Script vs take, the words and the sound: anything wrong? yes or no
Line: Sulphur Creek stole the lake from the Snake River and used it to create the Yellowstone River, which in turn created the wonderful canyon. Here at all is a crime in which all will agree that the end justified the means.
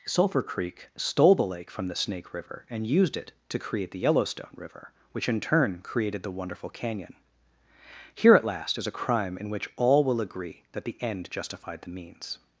yes